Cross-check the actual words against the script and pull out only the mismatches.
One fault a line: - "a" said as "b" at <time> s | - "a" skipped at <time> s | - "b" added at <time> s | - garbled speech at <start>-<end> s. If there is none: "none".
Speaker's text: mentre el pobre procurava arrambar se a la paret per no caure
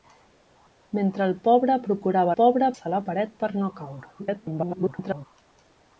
- "arrambar" said as "pobre" at 2.4 s
- garbled speech at 4.2-5.3 s